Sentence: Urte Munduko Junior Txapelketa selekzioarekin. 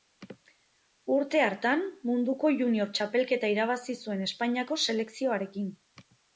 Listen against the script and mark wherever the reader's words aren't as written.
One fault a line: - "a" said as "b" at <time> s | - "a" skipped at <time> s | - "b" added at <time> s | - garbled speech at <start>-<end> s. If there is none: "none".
- "hartan" added at 1.5 s
- "irabazi zuen Espainiako" added at 3.6 s